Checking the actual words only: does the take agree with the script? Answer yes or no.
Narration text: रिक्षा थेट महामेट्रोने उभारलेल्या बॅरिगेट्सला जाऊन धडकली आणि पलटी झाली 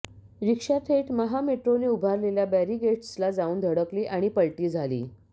yes